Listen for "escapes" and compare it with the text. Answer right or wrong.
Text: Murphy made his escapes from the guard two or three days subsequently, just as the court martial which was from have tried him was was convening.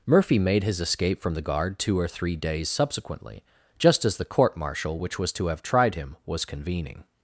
wrong